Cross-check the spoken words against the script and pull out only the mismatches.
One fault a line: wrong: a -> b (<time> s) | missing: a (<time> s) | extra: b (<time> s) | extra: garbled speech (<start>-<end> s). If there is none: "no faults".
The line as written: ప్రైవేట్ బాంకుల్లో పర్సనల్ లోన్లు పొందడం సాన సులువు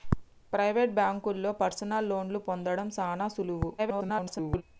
extra: garbled speech (3.8-4.6 s)